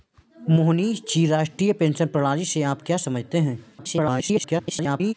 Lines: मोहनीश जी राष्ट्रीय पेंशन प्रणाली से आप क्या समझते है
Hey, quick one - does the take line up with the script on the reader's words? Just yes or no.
no